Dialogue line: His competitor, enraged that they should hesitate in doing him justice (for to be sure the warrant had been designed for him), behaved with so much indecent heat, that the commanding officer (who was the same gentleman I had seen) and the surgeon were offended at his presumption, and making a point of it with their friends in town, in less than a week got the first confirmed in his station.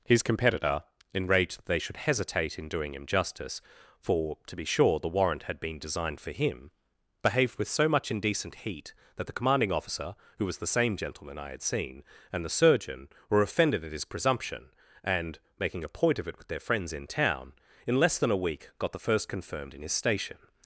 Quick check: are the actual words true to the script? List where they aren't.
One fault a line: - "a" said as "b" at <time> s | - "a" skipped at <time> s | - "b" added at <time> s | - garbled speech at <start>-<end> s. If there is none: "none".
none